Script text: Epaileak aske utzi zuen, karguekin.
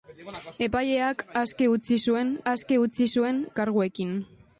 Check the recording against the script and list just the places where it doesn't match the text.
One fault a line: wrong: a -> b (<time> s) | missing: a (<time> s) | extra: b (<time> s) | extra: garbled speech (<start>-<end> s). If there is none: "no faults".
extra: aske utzi zuen (2.5 s)